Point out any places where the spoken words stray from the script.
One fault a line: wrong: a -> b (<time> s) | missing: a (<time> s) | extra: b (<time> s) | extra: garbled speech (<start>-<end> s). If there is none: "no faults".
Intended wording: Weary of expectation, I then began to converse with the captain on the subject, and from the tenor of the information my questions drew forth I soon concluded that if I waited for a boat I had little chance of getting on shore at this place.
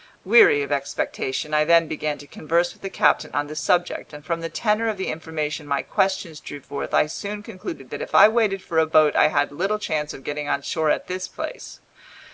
no faults